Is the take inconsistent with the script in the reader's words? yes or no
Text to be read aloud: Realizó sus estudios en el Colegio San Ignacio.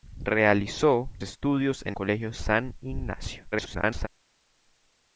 yes